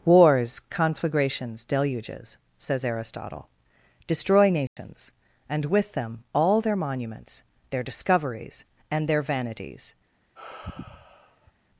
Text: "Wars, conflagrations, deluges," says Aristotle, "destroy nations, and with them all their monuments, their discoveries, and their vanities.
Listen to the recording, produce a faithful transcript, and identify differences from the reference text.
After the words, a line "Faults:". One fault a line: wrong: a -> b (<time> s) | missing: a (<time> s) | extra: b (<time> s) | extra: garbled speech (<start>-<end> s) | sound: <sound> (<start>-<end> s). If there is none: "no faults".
"Wars, conflagrations, deluges," says Aristotle, "destroy nations, and with them all their monuments, their discoveries, and their vanities.
Faults:
sound: dropout (4.7-4.8 s)
sound: sigh (10.4-11.5 s)